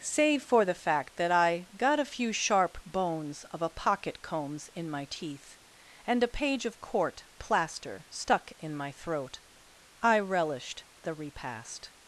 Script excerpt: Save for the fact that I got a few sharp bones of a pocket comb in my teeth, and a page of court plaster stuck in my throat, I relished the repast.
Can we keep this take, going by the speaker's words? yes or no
no